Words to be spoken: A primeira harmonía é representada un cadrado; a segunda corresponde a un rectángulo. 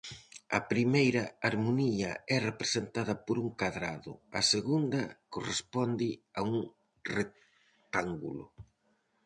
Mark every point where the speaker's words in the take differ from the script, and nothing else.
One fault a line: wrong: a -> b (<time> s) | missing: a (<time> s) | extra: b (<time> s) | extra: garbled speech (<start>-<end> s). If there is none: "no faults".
extra: por (3.2 s)